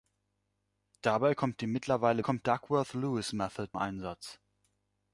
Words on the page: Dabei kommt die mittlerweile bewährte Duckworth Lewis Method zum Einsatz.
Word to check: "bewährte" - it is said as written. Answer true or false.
false